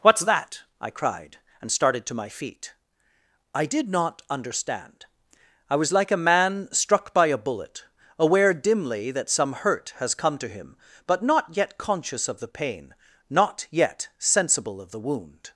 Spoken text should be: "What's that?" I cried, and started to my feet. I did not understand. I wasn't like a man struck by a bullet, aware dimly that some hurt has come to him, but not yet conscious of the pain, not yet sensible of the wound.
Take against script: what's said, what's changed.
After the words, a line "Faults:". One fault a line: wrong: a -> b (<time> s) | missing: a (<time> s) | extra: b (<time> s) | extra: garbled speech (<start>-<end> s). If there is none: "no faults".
"What's that?" I cried, and started to my feet. I did not understand. I was like a man struck by a bullet, aware dimly that some hurt has come to him, but not yet conscious of the pain, not yet sensible of the wound.
Faults:
wrong: wasn't -> was (5.8 s)